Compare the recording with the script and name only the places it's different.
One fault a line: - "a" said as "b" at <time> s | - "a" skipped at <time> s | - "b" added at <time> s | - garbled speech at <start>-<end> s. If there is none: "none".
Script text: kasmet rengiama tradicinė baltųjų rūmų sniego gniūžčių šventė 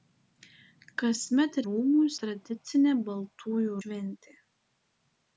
- "rengiama" said as "rūmų" at 1.7 s
- "rūmų sniego gniūžčių" skipped at 3.8 s